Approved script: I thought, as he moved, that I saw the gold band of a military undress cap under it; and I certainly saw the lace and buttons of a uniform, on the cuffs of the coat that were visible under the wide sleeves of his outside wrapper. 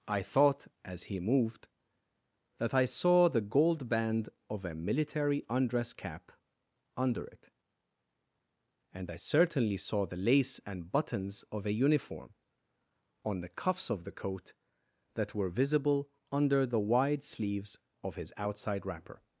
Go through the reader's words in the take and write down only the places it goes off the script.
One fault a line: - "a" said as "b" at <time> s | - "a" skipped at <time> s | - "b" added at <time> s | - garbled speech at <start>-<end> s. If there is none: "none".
none